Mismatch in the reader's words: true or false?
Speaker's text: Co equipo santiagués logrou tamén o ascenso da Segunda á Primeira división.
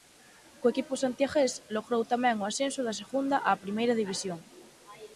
false